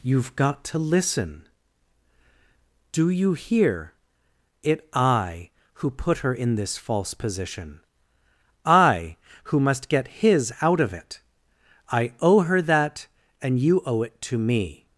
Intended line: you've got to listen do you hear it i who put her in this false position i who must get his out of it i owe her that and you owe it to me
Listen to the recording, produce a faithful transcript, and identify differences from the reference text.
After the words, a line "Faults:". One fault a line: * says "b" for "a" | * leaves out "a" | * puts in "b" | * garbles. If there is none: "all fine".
you've got to listen do you hear it i who put her in this false position i who must get his out of it i owe her that and you owe it to me
Faults:
all fine